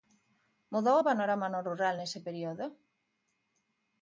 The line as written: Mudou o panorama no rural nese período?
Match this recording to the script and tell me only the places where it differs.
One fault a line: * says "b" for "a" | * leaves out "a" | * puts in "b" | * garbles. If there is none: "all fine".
all fine